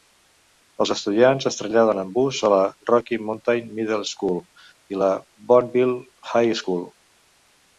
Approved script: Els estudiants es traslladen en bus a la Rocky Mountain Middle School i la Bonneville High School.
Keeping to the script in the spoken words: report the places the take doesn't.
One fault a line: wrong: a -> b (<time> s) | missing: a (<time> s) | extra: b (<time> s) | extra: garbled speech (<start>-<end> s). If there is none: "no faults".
no faults